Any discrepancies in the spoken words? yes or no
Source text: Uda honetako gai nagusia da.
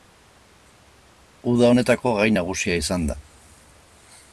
yes